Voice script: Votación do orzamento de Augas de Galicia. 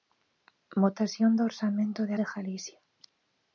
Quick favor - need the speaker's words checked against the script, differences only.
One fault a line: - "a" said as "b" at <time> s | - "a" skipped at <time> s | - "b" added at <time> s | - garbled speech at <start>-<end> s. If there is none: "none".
- "Augas" skipped at 2.1 s